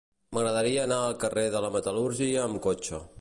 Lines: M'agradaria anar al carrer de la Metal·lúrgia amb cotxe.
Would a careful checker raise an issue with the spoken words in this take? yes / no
no